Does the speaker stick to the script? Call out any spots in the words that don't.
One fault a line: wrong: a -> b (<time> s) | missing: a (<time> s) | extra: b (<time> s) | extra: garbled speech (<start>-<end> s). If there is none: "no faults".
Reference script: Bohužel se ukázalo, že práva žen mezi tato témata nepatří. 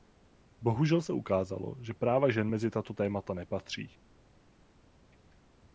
no faults